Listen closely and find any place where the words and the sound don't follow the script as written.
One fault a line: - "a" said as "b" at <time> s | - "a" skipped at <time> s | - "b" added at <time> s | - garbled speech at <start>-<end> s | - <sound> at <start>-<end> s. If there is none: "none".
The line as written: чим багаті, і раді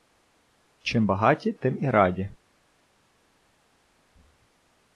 - "тим" added at 1.5 s